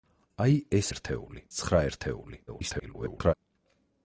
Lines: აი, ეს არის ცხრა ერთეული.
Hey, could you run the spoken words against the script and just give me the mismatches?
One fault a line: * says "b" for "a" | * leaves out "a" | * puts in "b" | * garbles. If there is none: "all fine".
* says "ერთეული" for "არის"
* garbles